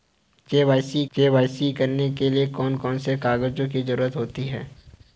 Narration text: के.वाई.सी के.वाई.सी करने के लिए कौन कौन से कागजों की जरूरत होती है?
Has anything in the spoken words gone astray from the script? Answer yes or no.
no